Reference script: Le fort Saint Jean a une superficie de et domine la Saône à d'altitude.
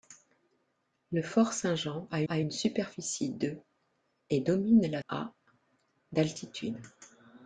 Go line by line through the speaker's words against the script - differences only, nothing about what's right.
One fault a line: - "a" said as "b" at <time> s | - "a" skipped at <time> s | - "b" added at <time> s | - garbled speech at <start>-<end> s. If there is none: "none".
- "a" added at 2.3 s
- "Saône" skipped at 5.0 s